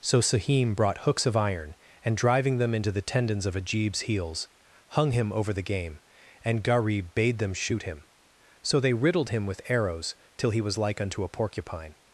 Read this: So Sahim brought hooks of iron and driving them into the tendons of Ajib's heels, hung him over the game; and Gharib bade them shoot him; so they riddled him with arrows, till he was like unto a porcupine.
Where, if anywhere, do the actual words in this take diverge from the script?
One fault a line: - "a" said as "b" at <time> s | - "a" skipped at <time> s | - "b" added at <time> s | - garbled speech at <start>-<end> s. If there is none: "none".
none